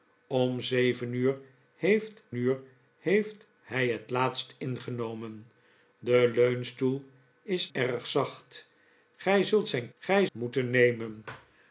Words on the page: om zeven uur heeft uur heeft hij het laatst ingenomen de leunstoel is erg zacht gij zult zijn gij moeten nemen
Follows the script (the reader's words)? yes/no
yes